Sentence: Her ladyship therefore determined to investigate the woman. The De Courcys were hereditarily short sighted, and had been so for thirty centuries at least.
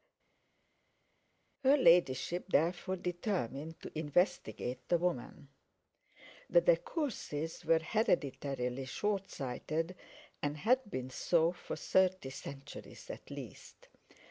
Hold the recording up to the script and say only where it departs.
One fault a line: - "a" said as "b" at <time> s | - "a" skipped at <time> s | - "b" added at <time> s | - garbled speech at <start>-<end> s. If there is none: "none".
none